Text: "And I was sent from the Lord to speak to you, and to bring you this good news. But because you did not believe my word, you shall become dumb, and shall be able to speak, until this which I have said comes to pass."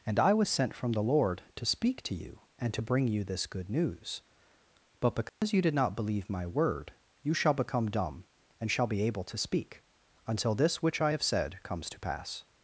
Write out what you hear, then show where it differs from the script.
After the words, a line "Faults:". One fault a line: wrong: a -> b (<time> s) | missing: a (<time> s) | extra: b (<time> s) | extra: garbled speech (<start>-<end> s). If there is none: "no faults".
"And I was sent from the Lord to speak to you, and to bring you this good news. But because you did not believe my word, you shall become dumb, and shall be able to speak, until this which I have said comes to pass."
Faults:
no faults